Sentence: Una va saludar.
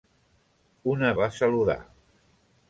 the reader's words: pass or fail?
pass